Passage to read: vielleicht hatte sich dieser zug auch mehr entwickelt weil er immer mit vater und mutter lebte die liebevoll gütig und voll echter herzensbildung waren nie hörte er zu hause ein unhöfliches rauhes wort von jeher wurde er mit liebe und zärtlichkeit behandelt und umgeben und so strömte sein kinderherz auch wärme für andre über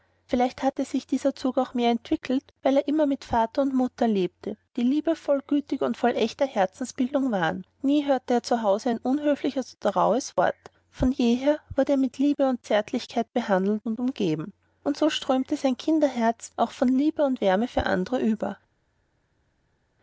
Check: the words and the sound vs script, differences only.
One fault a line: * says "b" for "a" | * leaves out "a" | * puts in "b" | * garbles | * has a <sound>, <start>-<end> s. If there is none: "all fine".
* puts in "oder"
* puts in "von liebe und"